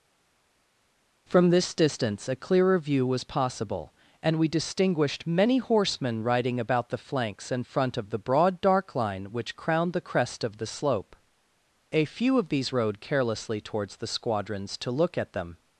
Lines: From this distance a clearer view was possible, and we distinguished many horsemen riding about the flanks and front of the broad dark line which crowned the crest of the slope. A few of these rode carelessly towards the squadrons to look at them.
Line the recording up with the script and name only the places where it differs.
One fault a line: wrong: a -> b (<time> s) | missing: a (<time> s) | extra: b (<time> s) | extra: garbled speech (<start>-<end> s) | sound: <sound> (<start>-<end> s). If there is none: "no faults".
no faults